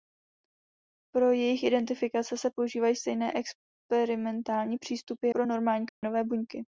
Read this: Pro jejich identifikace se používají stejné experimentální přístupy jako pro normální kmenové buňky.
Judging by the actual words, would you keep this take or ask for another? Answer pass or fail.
fail